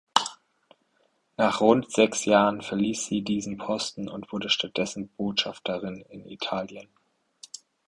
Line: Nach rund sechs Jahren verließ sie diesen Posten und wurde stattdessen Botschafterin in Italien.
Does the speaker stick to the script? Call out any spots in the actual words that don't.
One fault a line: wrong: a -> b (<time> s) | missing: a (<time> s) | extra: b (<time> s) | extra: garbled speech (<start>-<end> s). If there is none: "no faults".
no faults